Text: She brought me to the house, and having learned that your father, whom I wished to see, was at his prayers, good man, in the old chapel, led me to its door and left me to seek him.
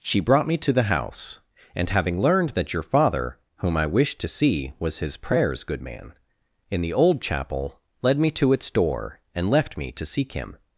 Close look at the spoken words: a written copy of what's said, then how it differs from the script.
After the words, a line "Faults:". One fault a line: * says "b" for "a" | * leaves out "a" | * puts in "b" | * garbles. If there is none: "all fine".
She brought me to the house, and having learned that your father, whom I wished to see, was his prayers, good man, in the old chapel, led me to its door and left me to seek him.
Faults:
* leaves out "at"